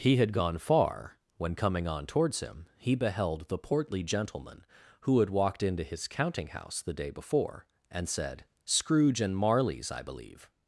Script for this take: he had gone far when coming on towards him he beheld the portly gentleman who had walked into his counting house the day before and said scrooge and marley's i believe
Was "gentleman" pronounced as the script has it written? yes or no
yes